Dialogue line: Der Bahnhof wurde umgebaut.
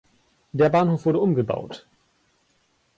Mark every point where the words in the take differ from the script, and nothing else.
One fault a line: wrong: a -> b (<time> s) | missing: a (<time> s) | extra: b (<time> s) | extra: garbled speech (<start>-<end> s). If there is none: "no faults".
no faults